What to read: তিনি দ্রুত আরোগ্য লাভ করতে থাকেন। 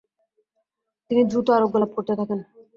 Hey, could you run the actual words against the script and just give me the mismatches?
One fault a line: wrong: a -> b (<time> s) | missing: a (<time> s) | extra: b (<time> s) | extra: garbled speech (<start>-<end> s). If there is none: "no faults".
no faults